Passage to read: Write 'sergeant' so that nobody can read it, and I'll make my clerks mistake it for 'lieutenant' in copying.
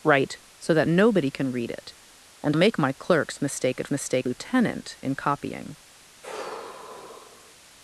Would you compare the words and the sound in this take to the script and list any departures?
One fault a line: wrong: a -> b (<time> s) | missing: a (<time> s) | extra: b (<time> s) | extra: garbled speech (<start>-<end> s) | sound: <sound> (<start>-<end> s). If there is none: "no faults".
missing: sergeant (0.4 s)
missing: I'll (2.6 s)
wrong: for -> mistake (3.9 s)
sound: sigh (6.2-7.5 s)